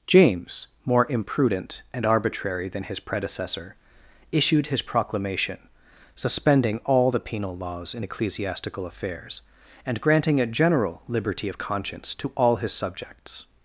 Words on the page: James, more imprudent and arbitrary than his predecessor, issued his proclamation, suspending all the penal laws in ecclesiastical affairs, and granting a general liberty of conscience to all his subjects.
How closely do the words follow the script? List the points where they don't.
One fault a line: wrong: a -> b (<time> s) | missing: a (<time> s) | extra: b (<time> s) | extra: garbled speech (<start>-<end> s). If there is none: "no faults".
no faults